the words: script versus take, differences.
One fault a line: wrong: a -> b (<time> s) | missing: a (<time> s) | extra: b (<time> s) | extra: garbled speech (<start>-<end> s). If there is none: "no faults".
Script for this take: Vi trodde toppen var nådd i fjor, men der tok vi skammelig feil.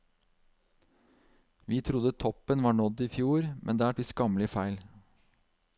missing: tok (3.9 s)